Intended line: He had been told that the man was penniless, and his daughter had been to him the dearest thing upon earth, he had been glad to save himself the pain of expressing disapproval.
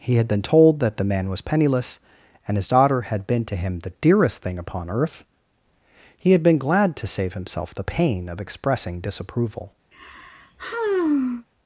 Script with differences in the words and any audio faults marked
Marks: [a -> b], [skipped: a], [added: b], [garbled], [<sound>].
He had been told that the man was penniless, and his daughter had been to him the dearest thing upon earth, he had been glad to save himself the pain of expressing disapproval. [sigh]